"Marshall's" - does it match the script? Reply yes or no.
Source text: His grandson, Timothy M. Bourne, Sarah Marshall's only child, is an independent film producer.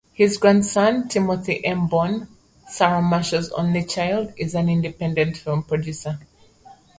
yes